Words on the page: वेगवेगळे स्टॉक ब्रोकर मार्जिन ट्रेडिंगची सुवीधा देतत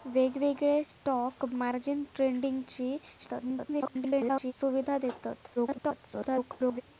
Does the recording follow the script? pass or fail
fail